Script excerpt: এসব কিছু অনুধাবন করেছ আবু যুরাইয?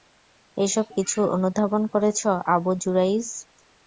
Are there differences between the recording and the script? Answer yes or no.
no